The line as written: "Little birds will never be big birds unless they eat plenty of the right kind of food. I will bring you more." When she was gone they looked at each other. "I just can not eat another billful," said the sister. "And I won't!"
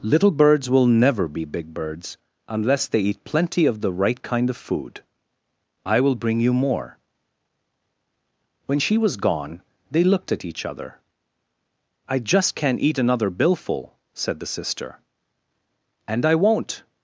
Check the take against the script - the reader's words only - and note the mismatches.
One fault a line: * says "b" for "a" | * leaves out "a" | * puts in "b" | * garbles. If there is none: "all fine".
all fine